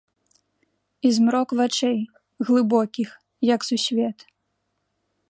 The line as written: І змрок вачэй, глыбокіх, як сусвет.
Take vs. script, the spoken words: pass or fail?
pass